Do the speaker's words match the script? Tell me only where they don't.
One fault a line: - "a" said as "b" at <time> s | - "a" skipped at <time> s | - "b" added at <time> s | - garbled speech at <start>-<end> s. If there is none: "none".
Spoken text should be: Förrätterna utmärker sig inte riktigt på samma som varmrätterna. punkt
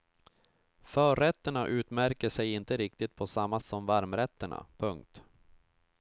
none